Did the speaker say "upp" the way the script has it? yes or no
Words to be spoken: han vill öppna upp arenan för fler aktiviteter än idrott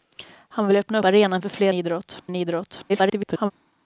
no